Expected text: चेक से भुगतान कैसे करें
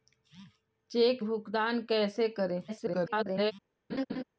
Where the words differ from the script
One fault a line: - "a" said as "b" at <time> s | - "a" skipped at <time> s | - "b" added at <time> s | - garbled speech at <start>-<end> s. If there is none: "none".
- "से" skipped at 1.2 s
- garbled speech at 2.7-3.5 s